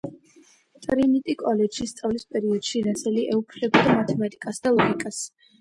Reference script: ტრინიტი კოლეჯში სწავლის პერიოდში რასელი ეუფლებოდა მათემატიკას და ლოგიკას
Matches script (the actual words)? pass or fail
pass